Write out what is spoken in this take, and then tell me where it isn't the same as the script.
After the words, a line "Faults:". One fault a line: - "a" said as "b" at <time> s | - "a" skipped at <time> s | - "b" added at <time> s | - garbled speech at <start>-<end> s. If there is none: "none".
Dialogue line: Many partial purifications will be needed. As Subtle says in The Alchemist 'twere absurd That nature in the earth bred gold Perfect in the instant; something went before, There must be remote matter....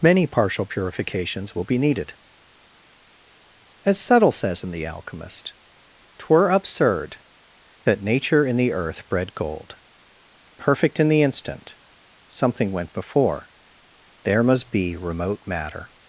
Many partial purifications will be needed. As Subtle says in The Alchemist 'twere absurd That nature in the earth bred gold Perfect in the instant; something went before, There must be remote matter....
Faults:
none